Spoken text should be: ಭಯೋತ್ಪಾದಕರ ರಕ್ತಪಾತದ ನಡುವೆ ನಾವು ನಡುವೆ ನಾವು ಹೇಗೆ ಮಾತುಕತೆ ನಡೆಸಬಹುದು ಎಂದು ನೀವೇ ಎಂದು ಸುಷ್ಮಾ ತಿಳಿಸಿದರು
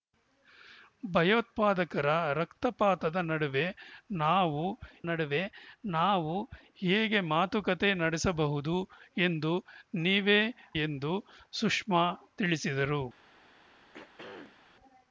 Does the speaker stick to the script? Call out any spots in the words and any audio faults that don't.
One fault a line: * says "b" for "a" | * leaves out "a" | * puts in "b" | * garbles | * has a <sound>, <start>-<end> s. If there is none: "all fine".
* has a throat clearing, 13.9-14.6 s